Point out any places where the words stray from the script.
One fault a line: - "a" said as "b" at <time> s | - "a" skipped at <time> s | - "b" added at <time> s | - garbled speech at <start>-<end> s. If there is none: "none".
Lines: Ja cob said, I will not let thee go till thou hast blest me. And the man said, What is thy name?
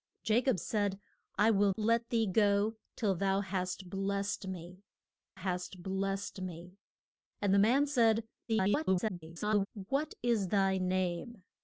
- "not" skipped at 1.7 s
- "hast blest me" added at 5.3 s
- garbled speech at 8.5-9.7 s